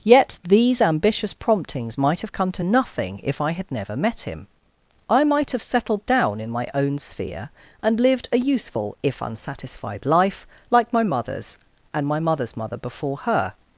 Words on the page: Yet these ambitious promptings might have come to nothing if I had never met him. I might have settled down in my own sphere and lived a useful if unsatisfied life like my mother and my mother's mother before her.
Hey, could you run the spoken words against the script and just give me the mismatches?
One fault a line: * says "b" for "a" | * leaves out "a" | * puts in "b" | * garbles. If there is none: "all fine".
* says "mothers" for "mother"